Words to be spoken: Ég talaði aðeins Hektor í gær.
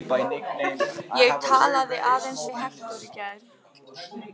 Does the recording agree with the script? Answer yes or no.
no